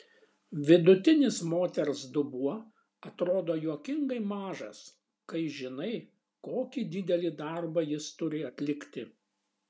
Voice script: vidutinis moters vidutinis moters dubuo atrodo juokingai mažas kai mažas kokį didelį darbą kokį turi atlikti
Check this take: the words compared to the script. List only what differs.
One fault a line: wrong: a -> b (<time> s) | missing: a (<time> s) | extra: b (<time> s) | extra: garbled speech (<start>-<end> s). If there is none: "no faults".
missing: vidutinis moters (2.0 s)
wrong: mažas -> žinai (5.6 s)
wrong: kokį -> jis (7.9 s)